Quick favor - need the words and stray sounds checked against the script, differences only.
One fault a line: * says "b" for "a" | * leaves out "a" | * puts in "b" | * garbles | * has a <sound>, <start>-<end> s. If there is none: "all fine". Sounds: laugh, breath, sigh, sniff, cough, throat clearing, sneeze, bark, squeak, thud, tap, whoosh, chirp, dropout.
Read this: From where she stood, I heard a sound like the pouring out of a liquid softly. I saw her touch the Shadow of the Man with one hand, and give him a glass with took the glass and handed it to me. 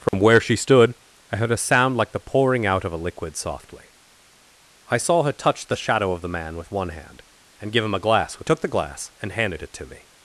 * has a dropout, 0.1-0.1 s